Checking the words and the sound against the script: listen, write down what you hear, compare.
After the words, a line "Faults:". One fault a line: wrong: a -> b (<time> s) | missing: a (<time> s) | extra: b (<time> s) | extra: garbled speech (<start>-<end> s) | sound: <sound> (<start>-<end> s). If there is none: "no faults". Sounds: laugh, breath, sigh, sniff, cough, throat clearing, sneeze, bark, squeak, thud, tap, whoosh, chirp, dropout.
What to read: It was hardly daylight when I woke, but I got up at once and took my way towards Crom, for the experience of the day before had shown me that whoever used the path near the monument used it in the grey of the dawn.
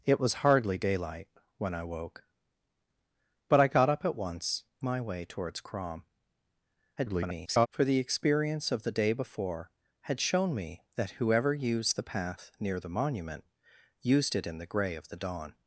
It was hardly daylight when I woke, but I got up at once my way towards Crom, [garbled] for the experience of the day before had shown me that whoever used the path near the monument used it in the grey of the dawn.
Faults:
missing: and took (4.6 s)
extra: garbled speech (7.0-7.7 s)